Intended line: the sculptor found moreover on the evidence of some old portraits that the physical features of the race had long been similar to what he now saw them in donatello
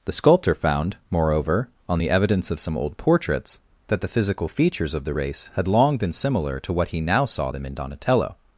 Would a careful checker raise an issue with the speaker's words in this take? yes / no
no